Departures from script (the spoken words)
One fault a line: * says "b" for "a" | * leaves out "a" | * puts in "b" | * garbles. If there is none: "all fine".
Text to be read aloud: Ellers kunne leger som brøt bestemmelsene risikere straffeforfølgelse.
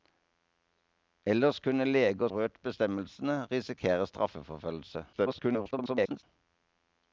* leaves out "som"
* garbles